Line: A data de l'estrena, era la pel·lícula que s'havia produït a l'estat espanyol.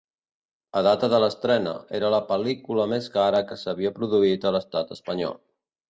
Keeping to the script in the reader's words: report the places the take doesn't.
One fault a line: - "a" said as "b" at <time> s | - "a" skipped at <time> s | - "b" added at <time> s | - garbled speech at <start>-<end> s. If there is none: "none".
- "més cara" added at 3.0 s